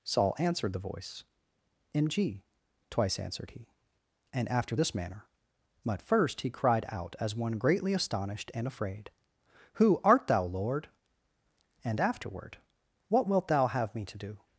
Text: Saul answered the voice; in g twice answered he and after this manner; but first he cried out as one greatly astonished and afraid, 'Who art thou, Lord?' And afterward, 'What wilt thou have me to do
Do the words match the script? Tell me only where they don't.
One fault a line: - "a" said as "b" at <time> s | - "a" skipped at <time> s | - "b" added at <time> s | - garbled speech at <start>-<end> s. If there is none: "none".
none